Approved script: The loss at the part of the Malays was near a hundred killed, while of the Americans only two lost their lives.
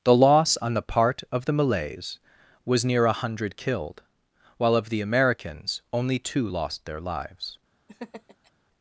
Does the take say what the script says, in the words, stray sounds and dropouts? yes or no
no